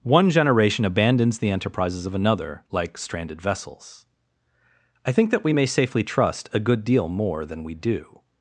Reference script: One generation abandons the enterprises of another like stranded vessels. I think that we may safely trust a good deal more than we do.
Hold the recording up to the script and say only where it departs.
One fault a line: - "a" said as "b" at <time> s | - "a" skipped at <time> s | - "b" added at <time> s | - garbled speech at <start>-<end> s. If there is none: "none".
none